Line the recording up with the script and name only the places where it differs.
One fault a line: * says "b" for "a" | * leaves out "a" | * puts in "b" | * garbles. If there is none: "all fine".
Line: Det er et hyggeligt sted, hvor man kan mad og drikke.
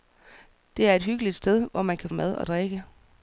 all fine